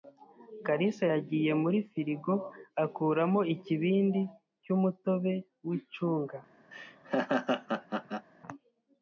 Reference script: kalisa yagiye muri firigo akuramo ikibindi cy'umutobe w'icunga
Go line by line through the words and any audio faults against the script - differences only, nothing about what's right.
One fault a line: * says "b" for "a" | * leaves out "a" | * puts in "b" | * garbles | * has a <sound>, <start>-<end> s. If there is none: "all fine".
* has a laugh, 6.7-8.3 s